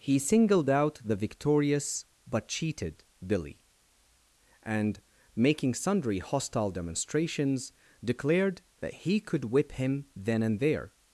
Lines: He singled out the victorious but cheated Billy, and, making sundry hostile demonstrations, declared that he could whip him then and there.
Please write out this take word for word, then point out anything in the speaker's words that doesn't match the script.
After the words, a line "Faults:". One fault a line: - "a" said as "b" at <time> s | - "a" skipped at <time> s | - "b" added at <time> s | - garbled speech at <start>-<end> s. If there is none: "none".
He singled out the victorious but cheated Billy, and, making sundry hostile demonstrations, declared that he could whip him then and there.
Faults:
none